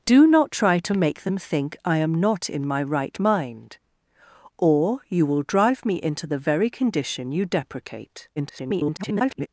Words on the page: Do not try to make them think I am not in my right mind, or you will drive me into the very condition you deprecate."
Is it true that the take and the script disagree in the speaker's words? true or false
true